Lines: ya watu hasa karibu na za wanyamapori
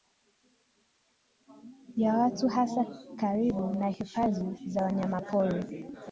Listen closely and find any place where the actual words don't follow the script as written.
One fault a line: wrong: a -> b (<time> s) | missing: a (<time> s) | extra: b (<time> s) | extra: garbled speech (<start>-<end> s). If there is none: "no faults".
extra: hifadhi (3.9 s)